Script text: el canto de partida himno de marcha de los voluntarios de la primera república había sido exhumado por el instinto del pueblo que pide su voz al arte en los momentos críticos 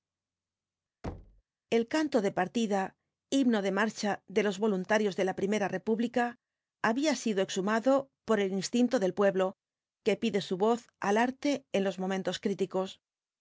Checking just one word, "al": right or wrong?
right